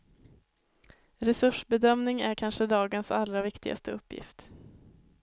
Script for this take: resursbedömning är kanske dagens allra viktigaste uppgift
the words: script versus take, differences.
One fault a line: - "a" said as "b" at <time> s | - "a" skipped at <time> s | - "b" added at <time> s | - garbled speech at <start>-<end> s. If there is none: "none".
none